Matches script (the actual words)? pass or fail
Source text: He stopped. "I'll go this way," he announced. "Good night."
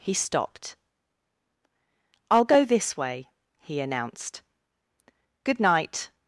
pass